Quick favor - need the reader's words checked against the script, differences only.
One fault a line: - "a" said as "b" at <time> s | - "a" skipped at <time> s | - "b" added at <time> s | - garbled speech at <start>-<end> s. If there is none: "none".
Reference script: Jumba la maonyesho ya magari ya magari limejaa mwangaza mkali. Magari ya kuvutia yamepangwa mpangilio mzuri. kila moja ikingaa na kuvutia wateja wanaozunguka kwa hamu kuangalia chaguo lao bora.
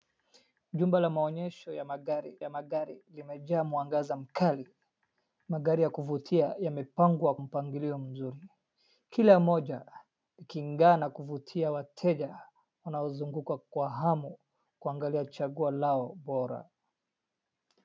none